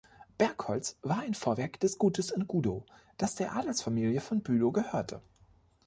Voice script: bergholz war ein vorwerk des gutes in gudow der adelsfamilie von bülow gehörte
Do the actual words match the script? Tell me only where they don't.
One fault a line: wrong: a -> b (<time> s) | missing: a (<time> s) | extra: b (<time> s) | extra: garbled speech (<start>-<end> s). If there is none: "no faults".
extra: das (3.2 s)